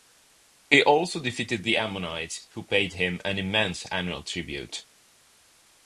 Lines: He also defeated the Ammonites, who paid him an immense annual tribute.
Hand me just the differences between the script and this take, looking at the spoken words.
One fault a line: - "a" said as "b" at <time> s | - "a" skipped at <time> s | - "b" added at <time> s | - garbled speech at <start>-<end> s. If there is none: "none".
none